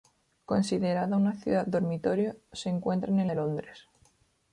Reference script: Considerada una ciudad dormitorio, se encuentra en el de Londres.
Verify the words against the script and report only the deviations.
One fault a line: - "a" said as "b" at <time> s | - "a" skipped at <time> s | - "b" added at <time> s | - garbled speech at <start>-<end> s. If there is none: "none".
none